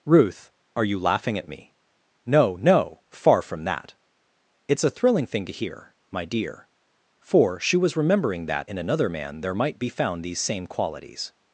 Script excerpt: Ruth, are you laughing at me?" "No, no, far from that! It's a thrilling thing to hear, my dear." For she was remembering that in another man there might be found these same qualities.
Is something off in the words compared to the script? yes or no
no